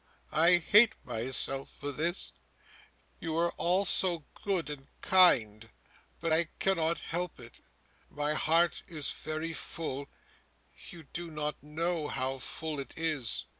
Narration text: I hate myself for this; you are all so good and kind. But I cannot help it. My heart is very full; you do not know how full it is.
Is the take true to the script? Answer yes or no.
yes